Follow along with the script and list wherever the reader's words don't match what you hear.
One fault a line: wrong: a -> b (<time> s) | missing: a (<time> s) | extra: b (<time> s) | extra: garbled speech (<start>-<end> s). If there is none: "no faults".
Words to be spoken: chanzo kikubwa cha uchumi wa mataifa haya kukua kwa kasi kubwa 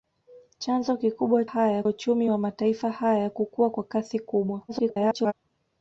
wrong: cha -> haya (1.4 s)
extra: garbled speech (4.7-5.3 s)